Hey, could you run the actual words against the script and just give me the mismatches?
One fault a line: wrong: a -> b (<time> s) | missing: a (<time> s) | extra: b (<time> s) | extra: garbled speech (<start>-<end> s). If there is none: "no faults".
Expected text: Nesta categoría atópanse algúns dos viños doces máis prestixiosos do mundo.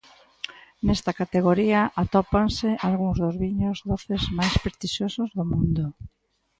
no faults